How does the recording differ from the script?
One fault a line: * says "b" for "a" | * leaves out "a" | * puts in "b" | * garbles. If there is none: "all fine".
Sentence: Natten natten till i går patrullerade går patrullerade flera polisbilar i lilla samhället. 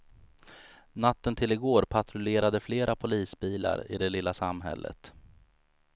* leaves out "natten"
* leaves out "går patrullerade"
* puts in "det"